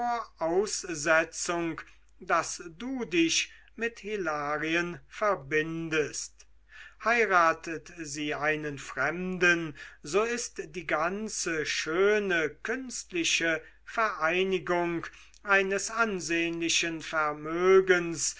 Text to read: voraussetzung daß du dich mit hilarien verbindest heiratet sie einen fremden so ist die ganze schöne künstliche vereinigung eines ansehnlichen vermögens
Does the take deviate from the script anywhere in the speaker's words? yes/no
no